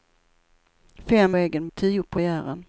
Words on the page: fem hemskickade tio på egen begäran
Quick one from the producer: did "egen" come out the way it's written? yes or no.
no